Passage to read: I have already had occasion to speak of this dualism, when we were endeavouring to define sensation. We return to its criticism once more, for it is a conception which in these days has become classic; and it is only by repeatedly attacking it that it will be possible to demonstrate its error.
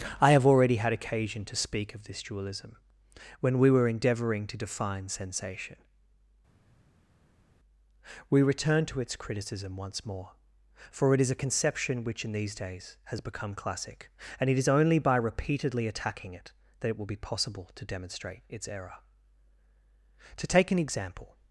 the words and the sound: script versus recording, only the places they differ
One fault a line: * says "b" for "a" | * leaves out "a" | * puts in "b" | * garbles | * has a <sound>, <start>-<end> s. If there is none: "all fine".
* puts in "To take an example"